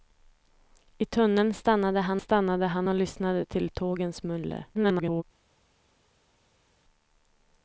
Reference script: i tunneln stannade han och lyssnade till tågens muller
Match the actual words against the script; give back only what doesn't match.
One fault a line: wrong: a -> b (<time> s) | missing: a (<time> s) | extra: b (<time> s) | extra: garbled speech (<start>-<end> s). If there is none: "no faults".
extra: stannade han (2.2 s)
extra: garbled speech (4.7-5.2 s)